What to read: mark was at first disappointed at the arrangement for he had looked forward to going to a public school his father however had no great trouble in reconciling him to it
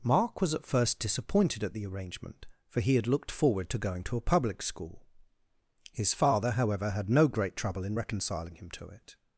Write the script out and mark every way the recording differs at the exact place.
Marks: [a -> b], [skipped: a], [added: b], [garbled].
mark was at first disappointed at the arrangement for he had looked forward to going to a public school his father however had no great trouble in reconciling him to it